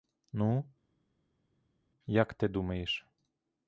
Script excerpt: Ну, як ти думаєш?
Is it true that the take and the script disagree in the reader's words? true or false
false